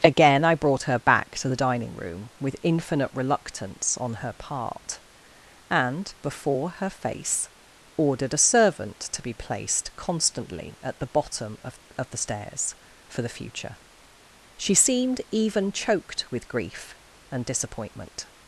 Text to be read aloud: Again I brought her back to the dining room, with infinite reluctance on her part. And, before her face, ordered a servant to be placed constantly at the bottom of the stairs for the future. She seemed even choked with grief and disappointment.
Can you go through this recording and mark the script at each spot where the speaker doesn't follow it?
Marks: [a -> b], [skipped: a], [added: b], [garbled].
Again I brought her back to the dining room, with infinite reluctance on her part. And, before her face, ordered a servant to be placed constantly at the bottom of [added: of] the stairs for the future. She seemed even choked with grief and disappointment.